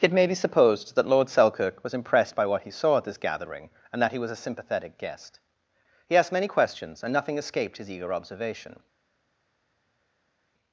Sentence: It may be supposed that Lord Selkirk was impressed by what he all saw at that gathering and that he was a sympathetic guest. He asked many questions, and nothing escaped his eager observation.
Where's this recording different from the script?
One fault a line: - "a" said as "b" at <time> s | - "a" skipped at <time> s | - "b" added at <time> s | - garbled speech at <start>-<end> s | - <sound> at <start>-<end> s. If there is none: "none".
- "all" skipped at 2.7 s
- "that" said as "this" at 3.0 s